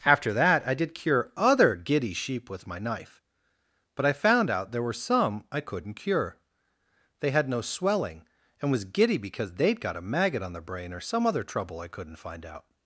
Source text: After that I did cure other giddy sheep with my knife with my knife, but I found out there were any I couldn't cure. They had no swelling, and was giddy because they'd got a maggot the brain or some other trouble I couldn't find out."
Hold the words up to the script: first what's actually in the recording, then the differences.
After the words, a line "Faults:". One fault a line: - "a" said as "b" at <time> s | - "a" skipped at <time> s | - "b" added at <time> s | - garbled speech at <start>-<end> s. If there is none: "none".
After that I did cure other giddy sheep with my knife, but I found out there were some I couldn't cure. They had no swelling, and was giddy because they'd got a maggot on the brain or some other trouble I couldn't find out."
Faults:
- "with my knife" skipped at 3.2 s
- "any" said as "some" at 4.9 s
- "on" added at 10.4 s